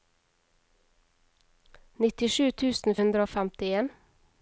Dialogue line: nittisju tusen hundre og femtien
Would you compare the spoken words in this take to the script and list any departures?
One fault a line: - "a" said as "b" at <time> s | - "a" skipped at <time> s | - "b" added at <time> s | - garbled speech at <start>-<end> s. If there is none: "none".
none